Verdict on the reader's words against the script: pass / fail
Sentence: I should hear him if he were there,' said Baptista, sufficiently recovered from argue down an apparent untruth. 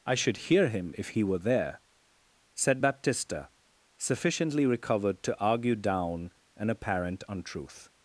fail